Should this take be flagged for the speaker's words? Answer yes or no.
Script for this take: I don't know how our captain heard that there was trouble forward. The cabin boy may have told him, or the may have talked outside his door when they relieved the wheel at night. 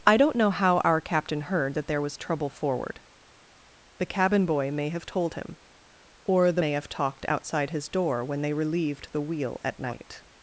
no